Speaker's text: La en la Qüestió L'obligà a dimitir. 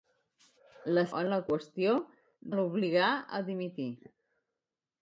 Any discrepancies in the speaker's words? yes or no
no